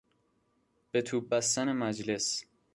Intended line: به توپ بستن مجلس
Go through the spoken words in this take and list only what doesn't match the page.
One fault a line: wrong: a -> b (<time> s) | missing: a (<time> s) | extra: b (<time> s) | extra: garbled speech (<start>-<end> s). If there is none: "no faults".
no faults